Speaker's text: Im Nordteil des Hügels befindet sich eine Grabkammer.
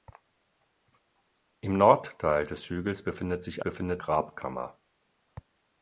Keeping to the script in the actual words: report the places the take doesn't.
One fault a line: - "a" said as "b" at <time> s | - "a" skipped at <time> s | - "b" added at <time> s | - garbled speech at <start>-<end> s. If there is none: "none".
- "eine" said as "befindet" at 3.6 s